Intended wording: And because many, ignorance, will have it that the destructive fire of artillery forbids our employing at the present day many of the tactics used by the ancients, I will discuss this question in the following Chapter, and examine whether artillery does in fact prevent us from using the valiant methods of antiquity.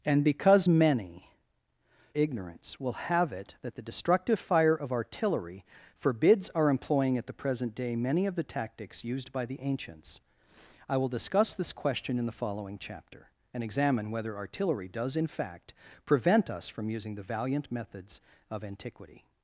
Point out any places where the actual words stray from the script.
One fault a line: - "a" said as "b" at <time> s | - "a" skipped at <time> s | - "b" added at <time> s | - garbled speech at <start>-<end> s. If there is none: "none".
none